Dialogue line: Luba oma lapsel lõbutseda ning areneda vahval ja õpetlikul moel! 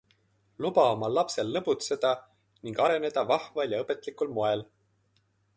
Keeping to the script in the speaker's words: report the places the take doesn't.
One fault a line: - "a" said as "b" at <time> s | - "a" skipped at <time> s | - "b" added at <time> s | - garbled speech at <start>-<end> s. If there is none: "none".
none